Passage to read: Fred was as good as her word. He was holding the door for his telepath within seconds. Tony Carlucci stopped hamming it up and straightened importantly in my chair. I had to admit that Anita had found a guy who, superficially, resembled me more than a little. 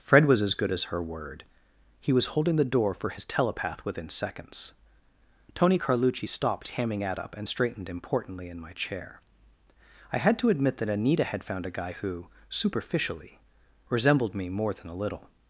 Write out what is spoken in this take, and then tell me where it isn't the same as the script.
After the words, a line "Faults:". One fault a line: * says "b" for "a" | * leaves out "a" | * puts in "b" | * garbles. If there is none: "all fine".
Fred was as good as her word. He was holding the door for his telepath within seconds. Tony Carlucci stopped hamming at up and straightened importantly in my chair. I had to admit that Anita had found a guy who, superficially, resembled me more than a little.
Faults:
* says "at" for "it"